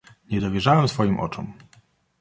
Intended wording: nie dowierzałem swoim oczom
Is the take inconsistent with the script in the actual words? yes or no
no